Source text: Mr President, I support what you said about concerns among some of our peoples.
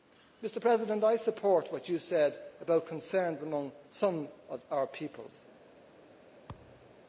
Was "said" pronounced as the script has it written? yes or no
yes